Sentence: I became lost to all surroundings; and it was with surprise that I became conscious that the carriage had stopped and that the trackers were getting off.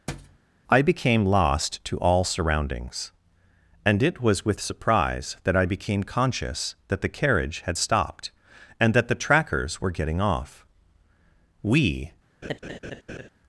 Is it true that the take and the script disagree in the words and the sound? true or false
true